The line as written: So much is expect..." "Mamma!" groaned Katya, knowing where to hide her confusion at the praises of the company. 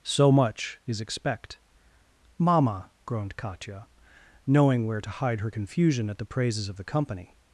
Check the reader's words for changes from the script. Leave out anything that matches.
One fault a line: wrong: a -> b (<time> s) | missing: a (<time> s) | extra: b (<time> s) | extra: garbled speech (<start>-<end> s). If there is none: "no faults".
no faults